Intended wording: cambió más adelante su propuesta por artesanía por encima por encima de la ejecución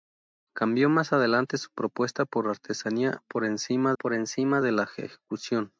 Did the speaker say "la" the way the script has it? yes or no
yes